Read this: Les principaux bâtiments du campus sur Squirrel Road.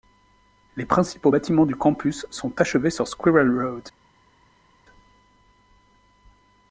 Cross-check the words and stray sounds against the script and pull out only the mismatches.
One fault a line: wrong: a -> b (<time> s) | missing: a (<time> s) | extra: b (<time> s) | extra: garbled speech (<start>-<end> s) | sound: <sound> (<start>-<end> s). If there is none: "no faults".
extra: sont achevés (2.3 s)